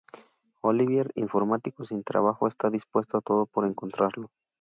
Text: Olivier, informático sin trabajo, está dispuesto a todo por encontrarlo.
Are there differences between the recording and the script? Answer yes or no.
no